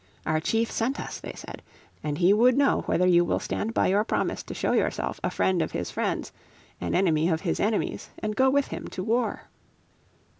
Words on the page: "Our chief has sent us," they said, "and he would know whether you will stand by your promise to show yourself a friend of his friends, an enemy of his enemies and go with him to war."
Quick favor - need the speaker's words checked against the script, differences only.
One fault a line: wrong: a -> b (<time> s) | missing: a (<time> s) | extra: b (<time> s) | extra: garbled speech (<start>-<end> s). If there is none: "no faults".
missing: has (0.7 s)